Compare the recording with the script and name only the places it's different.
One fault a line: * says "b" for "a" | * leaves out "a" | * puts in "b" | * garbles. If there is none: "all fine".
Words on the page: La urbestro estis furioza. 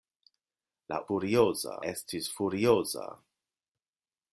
* says "furioza" for "urbestro"